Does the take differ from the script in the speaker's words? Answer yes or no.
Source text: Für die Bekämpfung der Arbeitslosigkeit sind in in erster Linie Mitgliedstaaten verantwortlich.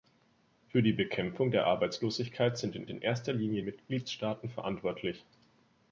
no